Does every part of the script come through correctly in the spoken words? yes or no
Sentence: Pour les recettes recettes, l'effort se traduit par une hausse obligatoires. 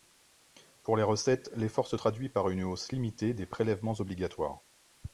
no